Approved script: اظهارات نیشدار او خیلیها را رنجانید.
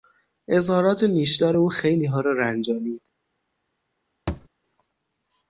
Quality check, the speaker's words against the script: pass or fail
pass